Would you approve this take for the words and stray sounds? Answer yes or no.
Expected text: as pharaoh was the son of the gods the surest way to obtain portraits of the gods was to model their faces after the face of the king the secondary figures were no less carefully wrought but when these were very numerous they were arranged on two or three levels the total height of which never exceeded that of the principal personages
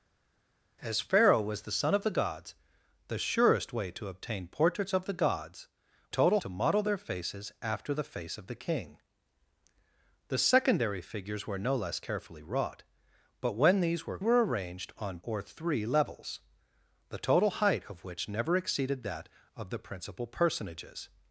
no